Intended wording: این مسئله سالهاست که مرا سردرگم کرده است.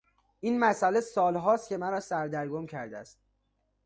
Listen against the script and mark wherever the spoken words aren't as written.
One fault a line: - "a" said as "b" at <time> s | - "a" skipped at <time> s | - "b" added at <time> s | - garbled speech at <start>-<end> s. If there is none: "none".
none